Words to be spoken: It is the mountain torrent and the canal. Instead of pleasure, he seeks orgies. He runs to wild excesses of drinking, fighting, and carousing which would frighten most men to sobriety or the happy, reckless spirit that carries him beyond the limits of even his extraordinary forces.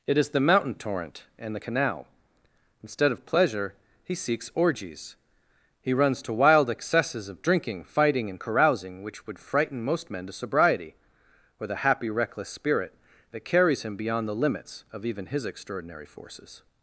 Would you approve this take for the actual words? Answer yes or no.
yes